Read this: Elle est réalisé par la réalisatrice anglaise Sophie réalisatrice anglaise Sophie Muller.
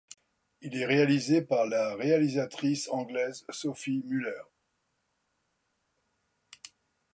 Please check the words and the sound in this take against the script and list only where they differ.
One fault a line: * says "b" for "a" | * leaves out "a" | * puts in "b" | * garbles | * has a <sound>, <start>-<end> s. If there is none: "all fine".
* says "Il" for "Elle"
* leaves out "réalisatrice anglaise Sophie"